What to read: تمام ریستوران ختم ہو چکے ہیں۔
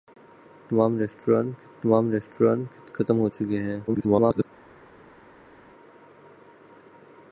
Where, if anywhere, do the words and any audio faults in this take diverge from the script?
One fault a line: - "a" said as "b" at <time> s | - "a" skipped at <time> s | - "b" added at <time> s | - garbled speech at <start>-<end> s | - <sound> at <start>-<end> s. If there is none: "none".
- "تمام ریستوران" added at 1.8 s
- garbled speech at 3.9-4.5 s